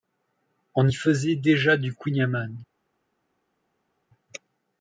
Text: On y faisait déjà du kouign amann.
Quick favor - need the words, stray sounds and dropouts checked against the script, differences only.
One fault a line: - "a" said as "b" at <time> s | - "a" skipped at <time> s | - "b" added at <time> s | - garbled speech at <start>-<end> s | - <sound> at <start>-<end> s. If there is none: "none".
none